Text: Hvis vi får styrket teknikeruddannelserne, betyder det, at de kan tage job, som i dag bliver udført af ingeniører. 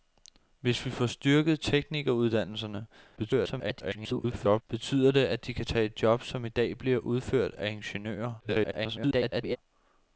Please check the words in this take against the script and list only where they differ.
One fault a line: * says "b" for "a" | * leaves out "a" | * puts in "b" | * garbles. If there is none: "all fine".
* garbles
* garbles